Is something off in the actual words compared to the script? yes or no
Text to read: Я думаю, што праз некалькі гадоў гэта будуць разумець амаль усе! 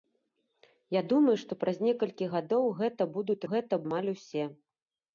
yes